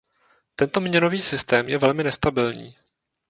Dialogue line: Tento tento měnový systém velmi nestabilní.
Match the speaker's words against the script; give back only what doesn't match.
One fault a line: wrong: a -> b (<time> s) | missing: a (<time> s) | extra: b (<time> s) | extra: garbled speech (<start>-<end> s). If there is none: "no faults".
missing: tento (0.8 s)
extra: je (1.7 s)